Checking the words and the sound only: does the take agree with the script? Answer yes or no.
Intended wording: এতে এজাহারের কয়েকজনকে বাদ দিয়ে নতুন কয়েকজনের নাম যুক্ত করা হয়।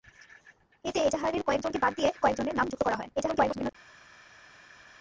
no